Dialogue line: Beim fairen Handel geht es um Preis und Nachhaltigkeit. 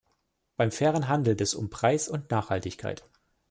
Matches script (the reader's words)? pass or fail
fail